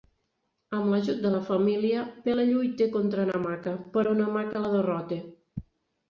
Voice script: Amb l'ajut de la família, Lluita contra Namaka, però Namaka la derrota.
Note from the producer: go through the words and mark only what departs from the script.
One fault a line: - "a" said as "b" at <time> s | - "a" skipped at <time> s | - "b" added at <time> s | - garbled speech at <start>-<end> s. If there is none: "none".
- "Pele" added at 2.3 s